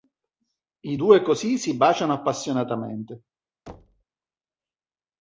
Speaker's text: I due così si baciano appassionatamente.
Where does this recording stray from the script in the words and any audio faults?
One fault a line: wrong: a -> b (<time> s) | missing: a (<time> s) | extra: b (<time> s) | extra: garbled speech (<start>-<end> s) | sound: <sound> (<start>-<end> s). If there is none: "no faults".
sound: thud (3.7-4.0 s)